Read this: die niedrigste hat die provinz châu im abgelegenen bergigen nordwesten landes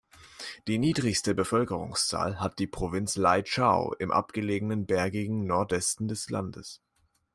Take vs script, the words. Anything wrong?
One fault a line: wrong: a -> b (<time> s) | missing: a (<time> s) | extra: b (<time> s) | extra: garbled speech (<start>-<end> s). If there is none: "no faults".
extra: bevölkerungszahl (1.4 s)
extra: lai (3.2 s)
extra: des (6.1 s)